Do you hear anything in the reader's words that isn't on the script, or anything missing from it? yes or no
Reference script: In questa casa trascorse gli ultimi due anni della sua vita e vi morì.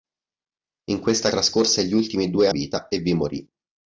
yes